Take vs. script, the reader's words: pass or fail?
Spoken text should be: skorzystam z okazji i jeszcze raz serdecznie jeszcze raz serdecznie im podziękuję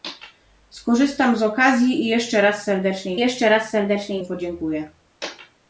pass